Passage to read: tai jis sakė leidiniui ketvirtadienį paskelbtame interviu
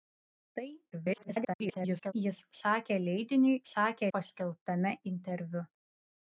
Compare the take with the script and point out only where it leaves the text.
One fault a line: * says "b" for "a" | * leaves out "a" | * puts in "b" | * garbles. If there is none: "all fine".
* garbles
* says "sakė" for "ketvirtadienį"